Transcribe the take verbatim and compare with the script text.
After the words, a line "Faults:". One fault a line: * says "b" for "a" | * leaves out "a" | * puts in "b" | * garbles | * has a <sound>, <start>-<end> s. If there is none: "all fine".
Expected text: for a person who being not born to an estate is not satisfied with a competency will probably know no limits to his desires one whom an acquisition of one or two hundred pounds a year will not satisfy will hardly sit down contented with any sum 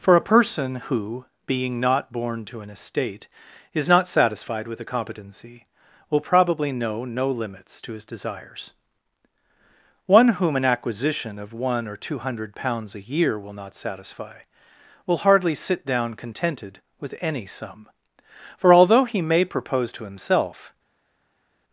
for a person who being not born to an estate is not satisfied with a competency will probably know no limits to his desires one whom an acquisition of one or two hundred pounds a year will not satisfy will hardly sit down contented with any sum for although he may propose to himself
Faults:
* puts in "for although he may propose to himself"